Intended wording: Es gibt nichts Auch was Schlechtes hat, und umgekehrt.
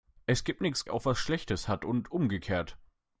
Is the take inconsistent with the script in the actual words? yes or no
no